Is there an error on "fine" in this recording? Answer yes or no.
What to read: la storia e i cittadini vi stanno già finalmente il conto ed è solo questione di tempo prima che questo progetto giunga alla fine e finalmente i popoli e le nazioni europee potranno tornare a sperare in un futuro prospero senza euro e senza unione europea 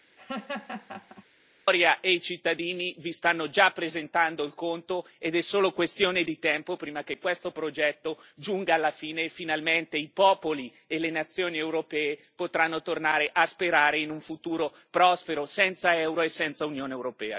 no